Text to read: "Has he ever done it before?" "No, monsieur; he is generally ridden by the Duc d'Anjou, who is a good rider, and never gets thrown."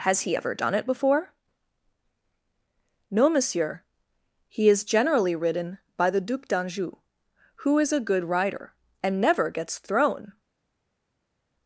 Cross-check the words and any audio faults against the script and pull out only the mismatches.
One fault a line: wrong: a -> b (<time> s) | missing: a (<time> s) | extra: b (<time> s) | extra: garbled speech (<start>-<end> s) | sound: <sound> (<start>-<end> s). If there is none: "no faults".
no faults